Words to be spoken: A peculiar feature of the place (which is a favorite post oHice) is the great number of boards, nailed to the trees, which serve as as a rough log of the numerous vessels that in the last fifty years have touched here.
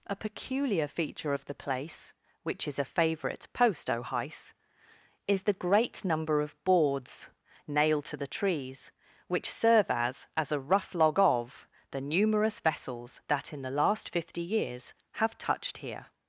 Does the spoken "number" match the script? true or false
true